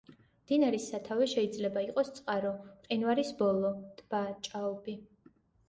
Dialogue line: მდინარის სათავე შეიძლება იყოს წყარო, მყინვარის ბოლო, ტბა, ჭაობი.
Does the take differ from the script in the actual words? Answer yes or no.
no